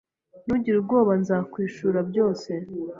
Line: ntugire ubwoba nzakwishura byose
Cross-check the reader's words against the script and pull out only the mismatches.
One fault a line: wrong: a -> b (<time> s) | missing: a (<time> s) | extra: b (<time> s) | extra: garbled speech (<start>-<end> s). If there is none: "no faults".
no faults